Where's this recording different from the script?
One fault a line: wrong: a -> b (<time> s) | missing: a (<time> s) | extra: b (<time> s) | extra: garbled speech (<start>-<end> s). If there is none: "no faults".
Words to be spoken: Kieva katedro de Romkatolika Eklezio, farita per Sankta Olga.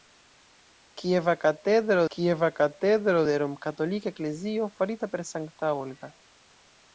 extra: kieva katedro (2.1 s)